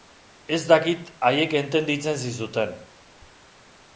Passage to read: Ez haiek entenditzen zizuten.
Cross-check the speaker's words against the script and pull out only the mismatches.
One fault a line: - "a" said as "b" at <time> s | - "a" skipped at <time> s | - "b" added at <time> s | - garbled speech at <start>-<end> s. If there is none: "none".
- "dakit" added at 0.7 s